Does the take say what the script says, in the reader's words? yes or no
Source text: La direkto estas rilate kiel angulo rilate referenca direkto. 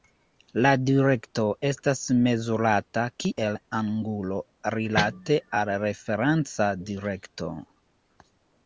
no